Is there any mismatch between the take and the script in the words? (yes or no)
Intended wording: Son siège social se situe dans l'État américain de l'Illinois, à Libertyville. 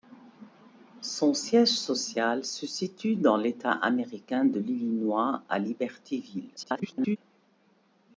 yes